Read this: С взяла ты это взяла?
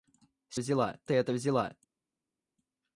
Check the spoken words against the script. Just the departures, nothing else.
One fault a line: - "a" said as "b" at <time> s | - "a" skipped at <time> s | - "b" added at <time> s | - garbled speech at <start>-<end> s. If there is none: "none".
none